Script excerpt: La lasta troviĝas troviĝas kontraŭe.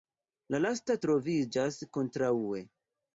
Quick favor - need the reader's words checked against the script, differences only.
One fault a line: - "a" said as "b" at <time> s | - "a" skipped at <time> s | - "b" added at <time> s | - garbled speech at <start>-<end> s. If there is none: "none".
- "troviĝas" skipped at 1.8 s